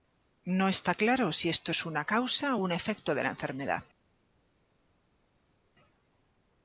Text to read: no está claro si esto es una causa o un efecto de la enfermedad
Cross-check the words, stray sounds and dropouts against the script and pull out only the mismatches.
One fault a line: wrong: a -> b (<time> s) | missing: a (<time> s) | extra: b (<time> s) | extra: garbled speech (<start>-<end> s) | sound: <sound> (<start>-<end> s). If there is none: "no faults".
no faults